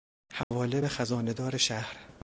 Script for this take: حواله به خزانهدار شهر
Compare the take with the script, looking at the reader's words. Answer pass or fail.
pass